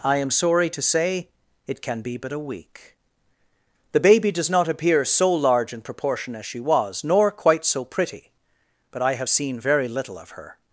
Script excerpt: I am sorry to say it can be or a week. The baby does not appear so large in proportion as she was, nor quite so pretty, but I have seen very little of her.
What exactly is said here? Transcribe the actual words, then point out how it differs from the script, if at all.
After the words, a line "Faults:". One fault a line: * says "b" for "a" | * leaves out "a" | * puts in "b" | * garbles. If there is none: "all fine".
I am sorry to say it can be but a week. The baby does not appear so large in proportion as she was, nor quite so pretty, but I have seen very little of her.
Faults:
* says "but" for "or"